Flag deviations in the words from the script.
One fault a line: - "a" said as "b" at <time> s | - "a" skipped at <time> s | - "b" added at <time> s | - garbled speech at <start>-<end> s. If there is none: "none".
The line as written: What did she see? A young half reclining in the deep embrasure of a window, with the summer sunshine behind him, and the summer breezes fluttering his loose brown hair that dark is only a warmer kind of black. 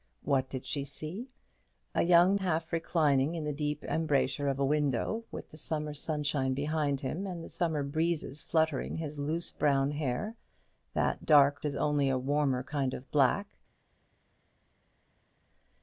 none